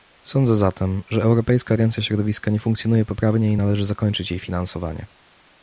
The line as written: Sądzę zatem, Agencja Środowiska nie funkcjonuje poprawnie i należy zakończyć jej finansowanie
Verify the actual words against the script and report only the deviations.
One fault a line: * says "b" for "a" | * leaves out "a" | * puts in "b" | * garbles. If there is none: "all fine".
* puts in "że Europejska"